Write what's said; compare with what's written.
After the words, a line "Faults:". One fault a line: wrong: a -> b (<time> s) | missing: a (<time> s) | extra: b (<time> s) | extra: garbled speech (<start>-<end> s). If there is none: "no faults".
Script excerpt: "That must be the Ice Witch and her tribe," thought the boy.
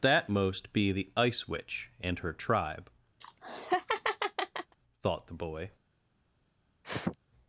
"That most be the Ice Witch and her tribe," thought the boy.
Faults:
wrong: must -> most (0.3 s)